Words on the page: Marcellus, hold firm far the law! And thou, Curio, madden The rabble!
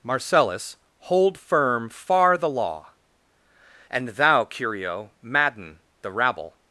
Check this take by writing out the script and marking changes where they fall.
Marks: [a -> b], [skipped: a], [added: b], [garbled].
Marcellus, hold firm far the law! And thou, Curio, madden The rabble!